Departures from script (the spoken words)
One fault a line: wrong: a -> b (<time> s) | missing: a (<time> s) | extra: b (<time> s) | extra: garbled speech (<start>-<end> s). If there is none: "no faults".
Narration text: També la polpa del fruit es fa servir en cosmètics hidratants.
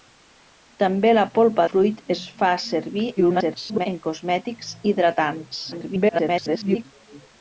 missing: del (1.7 s)
extra: garbled speech (3.2-3.9 s)
extra: garbled speech (5.7-6.9 s)